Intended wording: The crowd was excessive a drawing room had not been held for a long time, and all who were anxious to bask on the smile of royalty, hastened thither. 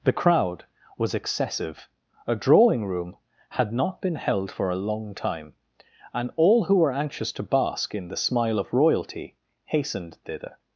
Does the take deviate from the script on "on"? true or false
true